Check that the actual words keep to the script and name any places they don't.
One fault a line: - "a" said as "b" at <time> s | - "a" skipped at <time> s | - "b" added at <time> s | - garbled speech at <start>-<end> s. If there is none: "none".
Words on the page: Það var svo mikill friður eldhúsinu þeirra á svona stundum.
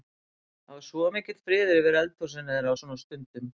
- "yfir" added at 1.8 s